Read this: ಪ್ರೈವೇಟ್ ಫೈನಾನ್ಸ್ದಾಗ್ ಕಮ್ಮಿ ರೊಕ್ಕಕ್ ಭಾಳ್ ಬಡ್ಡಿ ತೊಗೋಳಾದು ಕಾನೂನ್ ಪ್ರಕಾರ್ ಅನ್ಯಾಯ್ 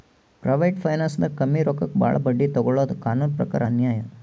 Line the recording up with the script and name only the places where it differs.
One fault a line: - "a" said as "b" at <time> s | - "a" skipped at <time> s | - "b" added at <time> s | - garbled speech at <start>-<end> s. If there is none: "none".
none